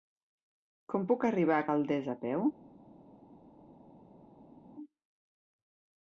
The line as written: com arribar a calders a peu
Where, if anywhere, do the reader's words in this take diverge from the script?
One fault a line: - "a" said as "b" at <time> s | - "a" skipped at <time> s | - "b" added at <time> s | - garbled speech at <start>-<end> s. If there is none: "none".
- "puc" added at 1.1 s